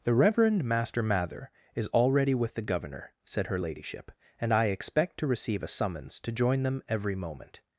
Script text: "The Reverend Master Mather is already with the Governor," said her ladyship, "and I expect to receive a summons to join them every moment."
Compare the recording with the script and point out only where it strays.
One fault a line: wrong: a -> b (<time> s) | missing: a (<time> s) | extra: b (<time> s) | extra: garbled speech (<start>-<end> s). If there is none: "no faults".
no faults